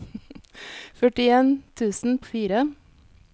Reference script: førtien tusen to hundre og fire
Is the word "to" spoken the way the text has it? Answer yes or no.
no